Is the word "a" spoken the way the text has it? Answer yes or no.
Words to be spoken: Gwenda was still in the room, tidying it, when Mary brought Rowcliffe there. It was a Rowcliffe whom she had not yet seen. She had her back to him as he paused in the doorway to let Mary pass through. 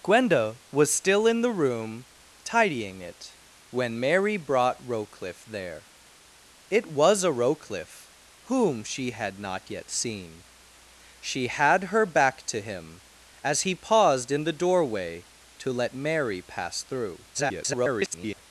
yes